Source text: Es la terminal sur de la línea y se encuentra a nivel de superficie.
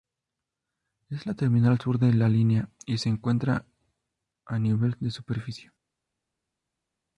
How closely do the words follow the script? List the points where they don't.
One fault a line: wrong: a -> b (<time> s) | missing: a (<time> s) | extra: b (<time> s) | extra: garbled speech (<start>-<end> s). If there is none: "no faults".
no faults